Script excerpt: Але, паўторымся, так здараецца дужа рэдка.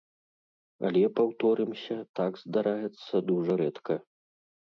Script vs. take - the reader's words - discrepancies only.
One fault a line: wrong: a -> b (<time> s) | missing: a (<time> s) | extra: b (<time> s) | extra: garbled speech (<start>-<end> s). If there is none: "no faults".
no faults